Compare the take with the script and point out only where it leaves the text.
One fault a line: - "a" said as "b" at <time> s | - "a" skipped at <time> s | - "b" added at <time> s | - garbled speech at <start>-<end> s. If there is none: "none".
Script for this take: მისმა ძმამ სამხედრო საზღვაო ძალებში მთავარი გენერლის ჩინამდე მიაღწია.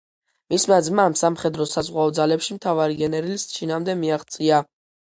none